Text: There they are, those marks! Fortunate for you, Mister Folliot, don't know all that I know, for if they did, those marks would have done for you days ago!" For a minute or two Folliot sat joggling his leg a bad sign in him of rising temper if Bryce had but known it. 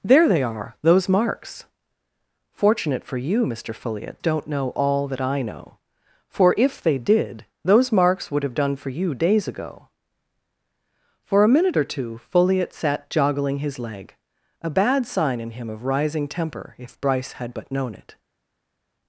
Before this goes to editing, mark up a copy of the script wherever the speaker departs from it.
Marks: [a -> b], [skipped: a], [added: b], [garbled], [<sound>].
There they are, those marks! Fortunate for you, Mister Folliot, don't know all that I know, for if they did, those marks would have done for you days ago!" For a minute or two Folliot sat joggling his leg a bad sign in him of rising temper if Bryce had but known it.